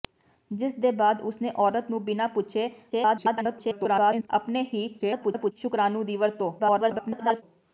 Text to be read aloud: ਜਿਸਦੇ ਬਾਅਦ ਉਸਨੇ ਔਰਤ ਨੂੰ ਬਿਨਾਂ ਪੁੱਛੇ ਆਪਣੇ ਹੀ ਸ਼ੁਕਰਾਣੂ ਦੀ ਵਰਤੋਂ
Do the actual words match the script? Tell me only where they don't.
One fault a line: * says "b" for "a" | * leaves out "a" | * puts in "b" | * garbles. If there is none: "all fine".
* garbles
* garbles
* garbles